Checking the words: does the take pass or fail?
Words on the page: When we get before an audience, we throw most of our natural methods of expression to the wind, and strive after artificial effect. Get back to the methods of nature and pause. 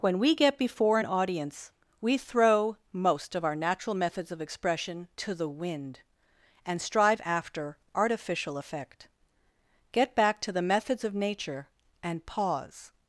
pass